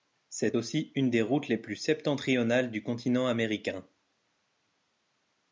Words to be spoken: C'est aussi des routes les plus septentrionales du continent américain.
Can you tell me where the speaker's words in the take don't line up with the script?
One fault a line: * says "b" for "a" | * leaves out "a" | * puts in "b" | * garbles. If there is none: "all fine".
* puts in "une"